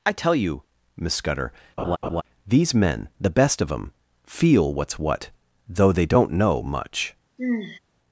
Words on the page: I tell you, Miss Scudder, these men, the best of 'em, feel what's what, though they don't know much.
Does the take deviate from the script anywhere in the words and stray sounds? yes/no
yes